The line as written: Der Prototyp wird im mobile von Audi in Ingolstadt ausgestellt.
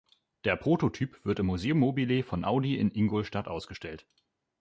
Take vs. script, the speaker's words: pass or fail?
fail